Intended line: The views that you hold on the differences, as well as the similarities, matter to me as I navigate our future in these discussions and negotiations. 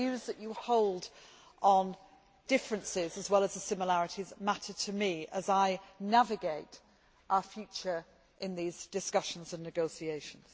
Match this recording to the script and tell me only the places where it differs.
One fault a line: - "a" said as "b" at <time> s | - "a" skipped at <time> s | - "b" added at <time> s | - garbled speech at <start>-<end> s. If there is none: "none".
- "the" skipped at 1.9 s